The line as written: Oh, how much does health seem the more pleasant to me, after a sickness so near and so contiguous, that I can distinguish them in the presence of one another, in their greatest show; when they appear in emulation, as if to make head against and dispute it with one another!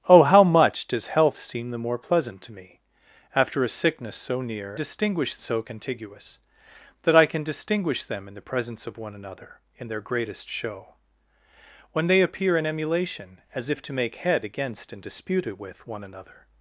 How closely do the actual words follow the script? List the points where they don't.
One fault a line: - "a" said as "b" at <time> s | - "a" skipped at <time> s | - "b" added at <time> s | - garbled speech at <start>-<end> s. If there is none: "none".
- "and" said as "distinguish" at 4.7 s